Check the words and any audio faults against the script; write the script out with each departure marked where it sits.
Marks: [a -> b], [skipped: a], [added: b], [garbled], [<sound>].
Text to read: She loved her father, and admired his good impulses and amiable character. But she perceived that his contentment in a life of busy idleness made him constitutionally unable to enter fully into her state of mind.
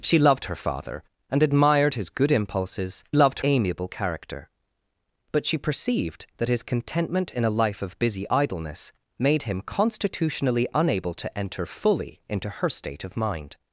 She loved her father, and admired his good impulses [and -> loved] amiable character. But she perceived that his contentment in a life of busy idleness made him constitutionally unable to enter fully into her state of mind.